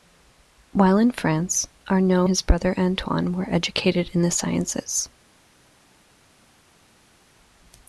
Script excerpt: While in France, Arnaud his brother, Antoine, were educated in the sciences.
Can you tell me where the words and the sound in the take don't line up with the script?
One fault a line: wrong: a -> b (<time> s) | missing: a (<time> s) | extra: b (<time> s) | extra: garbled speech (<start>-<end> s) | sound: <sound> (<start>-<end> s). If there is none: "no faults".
no faults